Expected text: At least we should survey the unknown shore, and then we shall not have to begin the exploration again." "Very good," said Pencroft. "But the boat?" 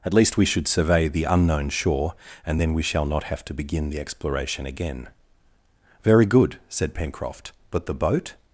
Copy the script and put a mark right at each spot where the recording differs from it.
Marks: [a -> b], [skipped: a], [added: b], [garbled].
At least we should survey the unknown shore, and then we shall not have to begin the exploration again." "Very good," said Pencroft. "But the boat?"